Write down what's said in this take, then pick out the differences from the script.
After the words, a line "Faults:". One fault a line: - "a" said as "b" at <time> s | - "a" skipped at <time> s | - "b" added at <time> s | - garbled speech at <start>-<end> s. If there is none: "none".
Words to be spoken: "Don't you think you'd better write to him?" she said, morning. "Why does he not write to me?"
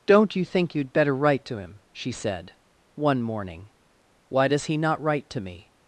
"Don't you think you'd better write to him?" she said, one morning. "Why does he not write to me?"
Faults:
- "one" added at 3.0 s